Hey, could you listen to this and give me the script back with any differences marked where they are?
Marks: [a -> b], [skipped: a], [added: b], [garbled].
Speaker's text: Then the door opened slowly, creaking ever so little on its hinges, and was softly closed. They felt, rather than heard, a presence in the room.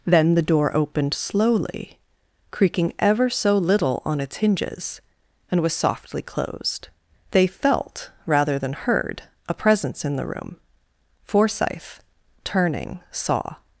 Then the door opened slowly, creaking ever so little on its hinges, and was softly closed. They felt, rather than heard, a presence in the room. [added: Forsyth turning saw]